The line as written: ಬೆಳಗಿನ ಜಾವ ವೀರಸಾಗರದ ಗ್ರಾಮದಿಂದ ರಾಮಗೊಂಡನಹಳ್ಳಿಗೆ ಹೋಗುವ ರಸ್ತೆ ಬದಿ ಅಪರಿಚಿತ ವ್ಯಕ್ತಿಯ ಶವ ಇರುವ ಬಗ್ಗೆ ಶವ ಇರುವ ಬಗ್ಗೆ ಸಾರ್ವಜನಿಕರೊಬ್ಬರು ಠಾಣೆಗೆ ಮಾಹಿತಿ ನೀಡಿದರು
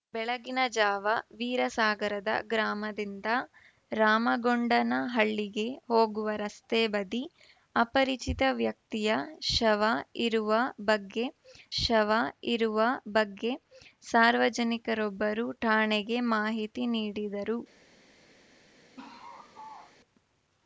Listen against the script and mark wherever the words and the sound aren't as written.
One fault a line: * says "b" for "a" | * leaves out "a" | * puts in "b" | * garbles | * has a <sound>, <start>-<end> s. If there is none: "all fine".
* has a laugh, 19.0-20.0 s